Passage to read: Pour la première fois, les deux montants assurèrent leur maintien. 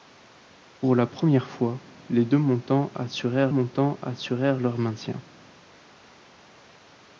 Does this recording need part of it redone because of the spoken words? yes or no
yes